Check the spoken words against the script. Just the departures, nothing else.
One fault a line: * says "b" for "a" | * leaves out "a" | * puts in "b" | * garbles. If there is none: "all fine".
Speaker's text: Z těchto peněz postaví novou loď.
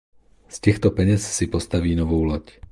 * puts in "si"